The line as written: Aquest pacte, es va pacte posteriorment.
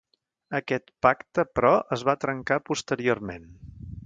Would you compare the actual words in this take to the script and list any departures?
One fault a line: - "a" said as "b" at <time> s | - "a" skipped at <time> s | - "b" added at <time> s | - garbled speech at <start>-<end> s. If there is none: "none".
- "però" added at 1.6 s
- "pacte" said as "trencar" at 2.3 s